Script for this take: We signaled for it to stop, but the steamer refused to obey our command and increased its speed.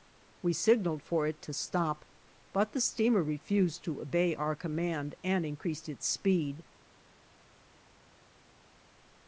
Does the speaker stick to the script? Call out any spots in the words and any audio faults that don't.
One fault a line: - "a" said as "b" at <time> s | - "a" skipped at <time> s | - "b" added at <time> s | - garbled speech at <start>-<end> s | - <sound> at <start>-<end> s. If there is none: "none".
none